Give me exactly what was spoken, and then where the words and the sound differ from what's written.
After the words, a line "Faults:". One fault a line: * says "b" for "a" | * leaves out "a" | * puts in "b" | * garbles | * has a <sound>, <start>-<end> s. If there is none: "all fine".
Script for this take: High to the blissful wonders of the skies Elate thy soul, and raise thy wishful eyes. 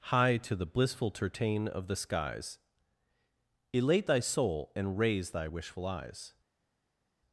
High to the blissful tertain of the skies Elate thy soul, and raise thy wishful eyes.
Faults:
* says "tertain" for "wonders"